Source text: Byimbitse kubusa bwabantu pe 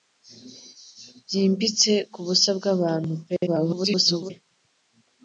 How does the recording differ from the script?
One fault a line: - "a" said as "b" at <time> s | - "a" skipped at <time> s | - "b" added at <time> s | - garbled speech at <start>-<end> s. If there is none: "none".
- garbled speech at 3.5-4.3 s